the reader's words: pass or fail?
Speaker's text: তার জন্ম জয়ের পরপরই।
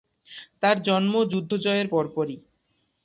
fail